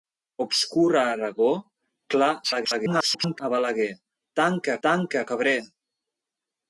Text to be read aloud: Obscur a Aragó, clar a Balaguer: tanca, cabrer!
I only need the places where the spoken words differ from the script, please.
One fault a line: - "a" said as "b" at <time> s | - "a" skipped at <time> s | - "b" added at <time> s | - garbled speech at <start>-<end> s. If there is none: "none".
- garbled speech at 2.4-3.4 s
- "tanca" added at 4.9 s